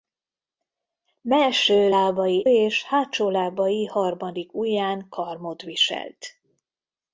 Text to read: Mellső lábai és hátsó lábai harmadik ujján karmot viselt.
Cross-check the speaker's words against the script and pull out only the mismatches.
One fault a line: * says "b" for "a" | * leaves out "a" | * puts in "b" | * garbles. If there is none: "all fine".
all fine